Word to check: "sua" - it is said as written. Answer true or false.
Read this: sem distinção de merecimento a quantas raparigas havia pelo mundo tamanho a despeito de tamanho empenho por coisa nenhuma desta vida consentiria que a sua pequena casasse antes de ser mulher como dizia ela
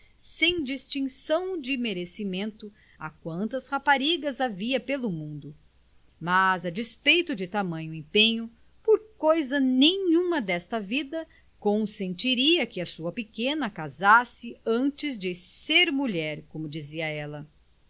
true